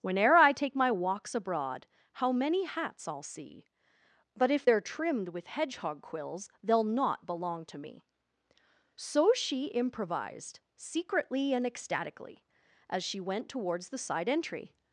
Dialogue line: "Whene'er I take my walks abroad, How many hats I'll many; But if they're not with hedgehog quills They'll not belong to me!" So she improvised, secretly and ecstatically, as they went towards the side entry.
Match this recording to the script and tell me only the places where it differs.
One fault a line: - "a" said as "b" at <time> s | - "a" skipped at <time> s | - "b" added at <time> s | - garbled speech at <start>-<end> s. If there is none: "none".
- "many" said as "see" at 3.2 s
- "not" said as "trimmed" at 4.8 s
- "they" said as "she" at 13.0 s